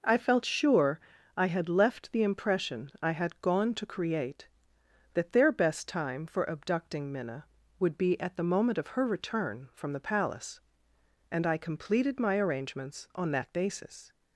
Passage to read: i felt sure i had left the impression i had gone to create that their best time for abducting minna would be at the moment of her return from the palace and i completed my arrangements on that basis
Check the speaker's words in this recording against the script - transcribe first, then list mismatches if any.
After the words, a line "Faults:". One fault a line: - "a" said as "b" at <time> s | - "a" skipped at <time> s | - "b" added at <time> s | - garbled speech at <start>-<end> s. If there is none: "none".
i felt sure i had left the impression i had gone to create that their best time for abducting minna would be at the moment of her return from the palace and i completed my arrangements on that basis
Faults:
none